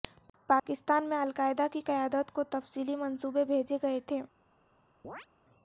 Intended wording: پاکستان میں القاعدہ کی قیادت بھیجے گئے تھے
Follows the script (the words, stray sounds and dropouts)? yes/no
no